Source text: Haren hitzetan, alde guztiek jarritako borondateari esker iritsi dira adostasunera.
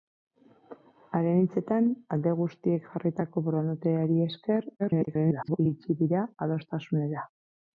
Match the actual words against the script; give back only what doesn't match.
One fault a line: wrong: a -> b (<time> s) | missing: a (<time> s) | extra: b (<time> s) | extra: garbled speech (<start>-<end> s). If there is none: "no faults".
extra: garbled speech (4.8-5.6 s)